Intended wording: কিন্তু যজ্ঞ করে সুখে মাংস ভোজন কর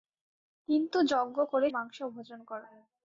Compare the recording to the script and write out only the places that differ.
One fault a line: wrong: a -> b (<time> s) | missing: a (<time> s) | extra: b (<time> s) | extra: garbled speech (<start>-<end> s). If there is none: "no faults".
missing: সুখে (1.7 s)